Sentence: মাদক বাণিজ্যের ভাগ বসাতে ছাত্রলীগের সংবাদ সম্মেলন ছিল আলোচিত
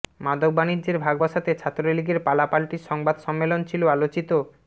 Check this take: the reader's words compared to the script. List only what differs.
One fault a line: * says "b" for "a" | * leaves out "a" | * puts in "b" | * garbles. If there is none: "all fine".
* puts in "পালাপাল্টি"